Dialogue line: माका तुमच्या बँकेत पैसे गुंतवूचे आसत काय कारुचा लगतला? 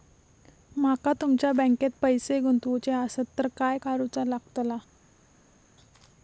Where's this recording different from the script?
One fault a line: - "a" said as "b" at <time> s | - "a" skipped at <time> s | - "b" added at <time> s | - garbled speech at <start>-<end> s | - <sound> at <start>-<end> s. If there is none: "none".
- "तर" added at 3.4 s